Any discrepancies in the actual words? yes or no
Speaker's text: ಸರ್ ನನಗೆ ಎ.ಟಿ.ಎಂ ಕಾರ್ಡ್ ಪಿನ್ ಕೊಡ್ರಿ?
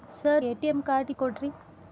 yes